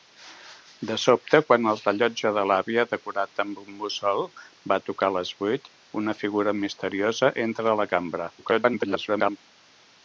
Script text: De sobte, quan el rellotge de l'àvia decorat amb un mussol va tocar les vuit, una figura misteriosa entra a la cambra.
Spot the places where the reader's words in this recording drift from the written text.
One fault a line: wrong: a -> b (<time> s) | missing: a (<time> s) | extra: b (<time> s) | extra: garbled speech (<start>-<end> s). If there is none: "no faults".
extra: garbled speech (8.4-9.4 s)